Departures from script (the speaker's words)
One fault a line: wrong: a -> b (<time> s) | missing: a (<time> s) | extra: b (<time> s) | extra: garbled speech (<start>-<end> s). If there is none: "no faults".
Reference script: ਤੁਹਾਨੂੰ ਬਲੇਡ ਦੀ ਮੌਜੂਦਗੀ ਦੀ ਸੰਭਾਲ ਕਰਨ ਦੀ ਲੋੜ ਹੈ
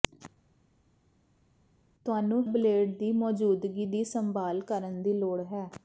no faults